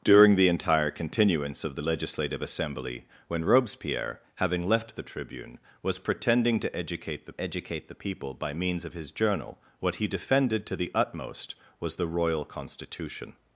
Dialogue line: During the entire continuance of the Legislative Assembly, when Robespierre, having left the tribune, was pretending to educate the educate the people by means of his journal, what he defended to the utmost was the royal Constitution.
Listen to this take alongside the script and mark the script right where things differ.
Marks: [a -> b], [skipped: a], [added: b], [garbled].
During the entire continuance of the Legislative Assembly, when Robespierre, having left the tribune, was pretending to educate the educate the people by means of his journal, what he defended to the utmost was the royal Constitution.